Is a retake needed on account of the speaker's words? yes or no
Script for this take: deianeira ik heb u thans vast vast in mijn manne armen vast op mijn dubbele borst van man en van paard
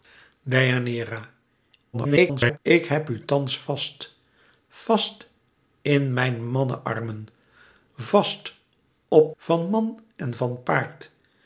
yes